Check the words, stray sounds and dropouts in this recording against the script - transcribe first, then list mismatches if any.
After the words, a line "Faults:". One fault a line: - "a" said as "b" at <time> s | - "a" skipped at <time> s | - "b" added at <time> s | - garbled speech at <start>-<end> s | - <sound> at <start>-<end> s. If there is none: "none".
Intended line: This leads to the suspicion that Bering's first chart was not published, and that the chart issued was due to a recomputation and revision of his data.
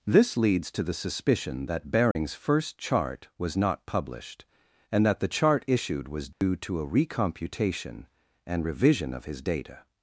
This leads to the suspicion that Bering's first chart was not published, and that the chart issued was due to a recomputation and revision of his data.
Faults:
- dropout at 2.1-2.2 s
- dropout at 6.3-6.4 s